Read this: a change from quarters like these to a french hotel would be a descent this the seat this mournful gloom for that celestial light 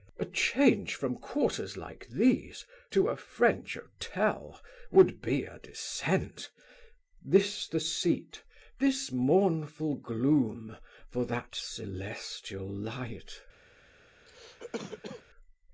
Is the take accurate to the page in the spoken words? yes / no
yes